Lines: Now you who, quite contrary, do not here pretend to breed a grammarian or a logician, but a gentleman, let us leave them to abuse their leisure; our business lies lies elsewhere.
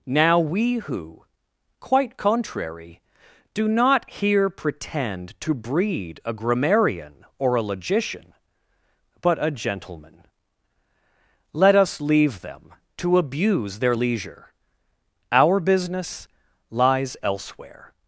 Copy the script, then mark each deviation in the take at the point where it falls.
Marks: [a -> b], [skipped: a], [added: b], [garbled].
Now [you -> we] who, quite contrary, do not here pretend to breed a grammarian or a logician, but a gentleman, let us leave them to abuse their leisure; our business lies [skipped: lies] elsewhere.